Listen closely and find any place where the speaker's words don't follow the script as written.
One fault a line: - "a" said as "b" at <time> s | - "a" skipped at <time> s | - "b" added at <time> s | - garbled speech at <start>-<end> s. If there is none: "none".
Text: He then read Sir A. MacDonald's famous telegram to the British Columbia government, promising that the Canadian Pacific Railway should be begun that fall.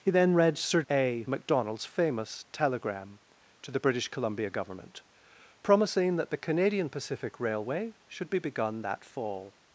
none